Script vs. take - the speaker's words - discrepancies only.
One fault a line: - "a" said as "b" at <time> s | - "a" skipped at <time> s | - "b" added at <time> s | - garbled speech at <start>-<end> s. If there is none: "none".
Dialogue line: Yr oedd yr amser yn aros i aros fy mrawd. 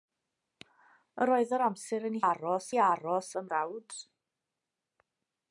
none